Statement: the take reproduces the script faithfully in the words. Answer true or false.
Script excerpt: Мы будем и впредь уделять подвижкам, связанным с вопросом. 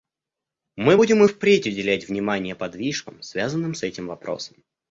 false